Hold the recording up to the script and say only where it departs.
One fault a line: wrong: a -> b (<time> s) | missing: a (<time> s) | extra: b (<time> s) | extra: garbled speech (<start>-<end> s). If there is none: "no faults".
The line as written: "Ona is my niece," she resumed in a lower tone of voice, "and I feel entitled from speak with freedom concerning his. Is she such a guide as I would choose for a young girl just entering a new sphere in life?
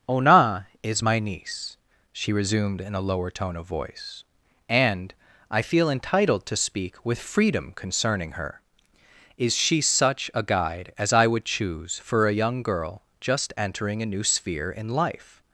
wrong: from -> to (6.5 s)
wrong: his -> her (8.3 s)